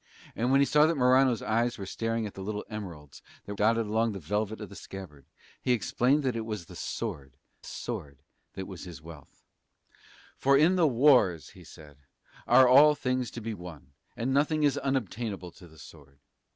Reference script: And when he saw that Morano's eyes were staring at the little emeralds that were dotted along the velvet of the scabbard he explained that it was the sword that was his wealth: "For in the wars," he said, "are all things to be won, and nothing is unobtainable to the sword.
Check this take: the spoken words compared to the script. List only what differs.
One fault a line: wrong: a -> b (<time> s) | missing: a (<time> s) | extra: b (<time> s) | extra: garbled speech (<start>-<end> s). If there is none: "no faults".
missing: were (3.5 s)
extra: sword (7.6 s)